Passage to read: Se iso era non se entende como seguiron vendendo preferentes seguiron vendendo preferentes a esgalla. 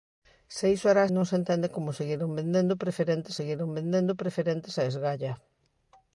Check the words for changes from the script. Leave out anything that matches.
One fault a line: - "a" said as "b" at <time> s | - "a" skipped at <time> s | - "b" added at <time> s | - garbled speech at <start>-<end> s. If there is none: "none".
none